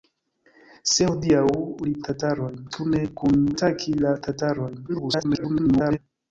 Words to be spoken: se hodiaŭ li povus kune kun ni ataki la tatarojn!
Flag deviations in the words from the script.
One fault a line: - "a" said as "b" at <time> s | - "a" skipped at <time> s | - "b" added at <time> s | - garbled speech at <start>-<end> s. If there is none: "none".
- "povus" said as "tatarojn" at 2.1 s
- "ni" skipped at 3.4 s
- garbled speech at 4.9-6.0 s